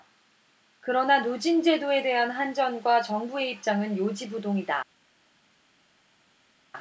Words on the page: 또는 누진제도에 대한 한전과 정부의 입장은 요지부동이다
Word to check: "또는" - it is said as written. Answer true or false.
false